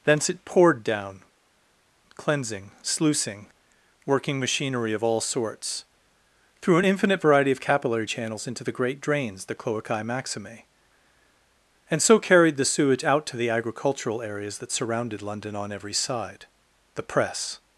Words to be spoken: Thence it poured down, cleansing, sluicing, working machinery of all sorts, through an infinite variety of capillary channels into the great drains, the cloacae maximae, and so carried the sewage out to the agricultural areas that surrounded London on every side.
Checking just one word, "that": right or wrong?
right